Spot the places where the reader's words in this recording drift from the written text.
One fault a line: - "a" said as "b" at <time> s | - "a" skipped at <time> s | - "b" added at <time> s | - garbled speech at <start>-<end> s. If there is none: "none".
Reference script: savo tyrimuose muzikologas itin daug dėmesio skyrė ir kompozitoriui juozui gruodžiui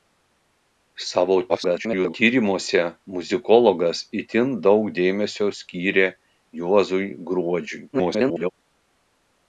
- garbled speech at 1.5-2.1 s
- "ir kompozitoriui" skipped at 6.1 s
- garbled speech at 7.9-8.5 s